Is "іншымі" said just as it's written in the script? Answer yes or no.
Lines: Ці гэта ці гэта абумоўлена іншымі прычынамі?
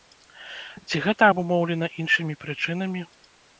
yes